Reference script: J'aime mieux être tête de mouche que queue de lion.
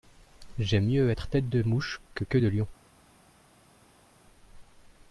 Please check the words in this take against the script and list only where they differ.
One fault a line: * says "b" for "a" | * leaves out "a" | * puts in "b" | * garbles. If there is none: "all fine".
all fine